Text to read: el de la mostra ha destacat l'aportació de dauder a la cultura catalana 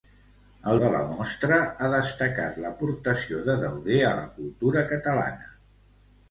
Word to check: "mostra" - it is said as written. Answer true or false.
true